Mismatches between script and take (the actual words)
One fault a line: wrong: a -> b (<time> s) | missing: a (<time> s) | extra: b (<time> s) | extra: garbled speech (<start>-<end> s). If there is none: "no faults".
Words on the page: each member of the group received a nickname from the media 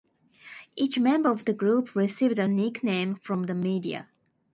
no faults